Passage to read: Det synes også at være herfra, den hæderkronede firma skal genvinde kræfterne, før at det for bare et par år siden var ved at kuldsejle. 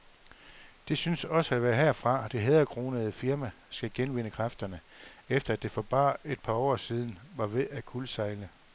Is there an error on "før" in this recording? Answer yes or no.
yes